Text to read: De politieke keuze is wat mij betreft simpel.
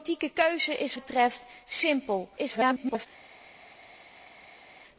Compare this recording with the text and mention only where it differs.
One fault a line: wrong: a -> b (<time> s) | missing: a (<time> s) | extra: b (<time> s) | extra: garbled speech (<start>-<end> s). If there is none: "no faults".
missing: wat mij (0.9 s)
extra: garbled speech (2.4-3.1 s)